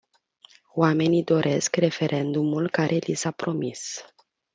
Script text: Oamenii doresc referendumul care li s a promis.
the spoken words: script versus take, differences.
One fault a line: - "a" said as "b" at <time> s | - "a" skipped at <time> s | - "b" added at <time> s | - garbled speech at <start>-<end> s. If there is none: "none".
none